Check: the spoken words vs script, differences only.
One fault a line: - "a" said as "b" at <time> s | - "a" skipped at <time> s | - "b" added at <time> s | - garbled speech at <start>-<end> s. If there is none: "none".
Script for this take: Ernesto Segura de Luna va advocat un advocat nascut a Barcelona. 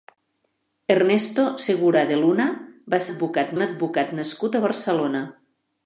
none